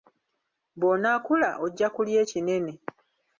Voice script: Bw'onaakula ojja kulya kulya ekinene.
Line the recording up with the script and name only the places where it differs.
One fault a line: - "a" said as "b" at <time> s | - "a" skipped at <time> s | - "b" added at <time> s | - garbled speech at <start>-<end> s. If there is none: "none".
- "kulya" skipped at 2.2 s